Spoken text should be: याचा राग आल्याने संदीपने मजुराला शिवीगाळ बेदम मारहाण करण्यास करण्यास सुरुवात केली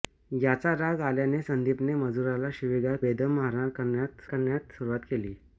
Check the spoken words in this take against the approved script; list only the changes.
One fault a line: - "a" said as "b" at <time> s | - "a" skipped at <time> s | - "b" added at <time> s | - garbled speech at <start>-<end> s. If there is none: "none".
none